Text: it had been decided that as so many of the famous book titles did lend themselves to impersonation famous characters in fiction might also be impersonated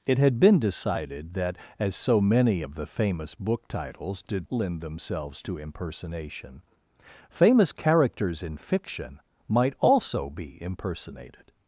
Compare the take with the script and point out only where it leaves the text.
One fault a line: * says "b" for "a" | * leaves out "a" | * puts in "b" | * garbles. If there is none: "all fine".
all fine